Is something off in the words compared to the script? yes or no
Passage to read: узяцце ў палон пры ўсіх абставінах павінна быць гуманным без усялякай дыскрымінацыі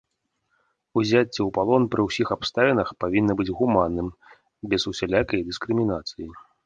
no